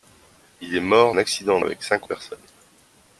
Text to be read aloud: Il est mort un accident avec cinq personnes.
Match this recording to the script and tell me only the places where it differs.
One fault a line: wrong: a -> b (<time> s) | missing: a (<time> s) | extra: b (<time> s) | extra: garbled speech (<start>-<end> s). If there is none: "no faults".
no faults